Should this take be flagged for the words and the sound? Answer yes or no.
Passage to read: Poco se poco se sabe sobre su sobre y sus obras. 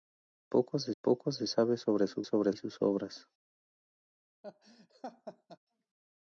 yes